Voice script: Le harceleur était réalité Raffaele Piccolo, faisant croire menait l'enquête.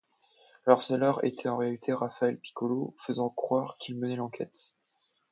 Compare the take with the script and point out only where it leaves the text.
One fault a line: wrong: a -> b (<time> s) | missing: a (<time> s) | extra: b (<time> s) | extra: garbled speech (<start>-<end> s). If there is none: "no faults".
extra: en (1.5 s)
extra: qu'il (3.8 s)